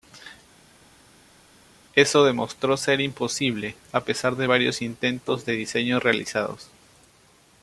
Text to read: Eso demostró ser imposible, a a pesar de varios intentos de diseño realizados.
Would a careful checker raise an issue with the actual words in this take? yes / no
yes